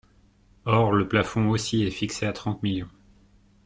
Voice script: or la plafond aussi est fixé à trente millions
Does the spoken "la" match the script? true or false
false